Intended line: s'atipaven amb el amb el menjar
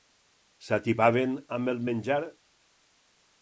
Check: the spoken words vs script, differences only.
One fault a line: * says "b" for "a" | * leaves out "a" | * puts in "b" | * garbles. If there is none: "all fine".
* leaves out "amb el"